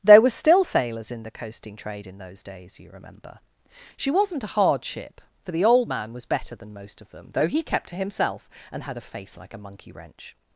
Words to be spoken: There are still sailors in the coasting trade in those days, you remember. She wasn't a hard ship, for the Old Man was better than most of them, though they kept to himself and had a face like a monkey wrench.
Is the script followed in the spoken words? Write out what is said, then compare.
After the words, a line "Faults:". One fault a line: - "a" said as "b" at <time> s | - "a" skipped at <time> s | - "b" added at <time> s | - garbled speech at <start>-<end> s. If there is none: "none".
There were still sailors in the coasting trade in those days, you remember. She wasn't a hard ship, for the Old Man was better than most of them, though he kept to himself and had a face like a monkey wrench.
Faults:
- "are" said as "were" at 0.2 s
- "they" said as "he" at 7.5 s